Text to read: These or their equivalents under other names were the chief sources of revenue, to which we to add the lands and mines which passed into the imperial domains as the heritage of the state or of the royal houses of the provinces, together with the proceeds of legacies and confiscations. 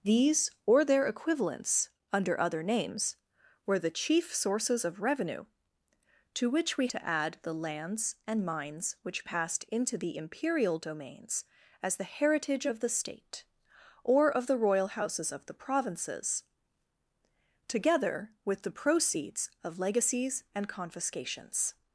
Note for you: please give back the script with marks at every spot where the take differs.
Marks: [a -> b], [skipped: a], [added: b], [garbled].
These or their equivalents under other names were the chief sources of revenue, to which we to add the lands and mines which passed into the imperial domains as the heritage of the state or of the royal houses of the provinces, together with the proceeds of legacies and confiscations.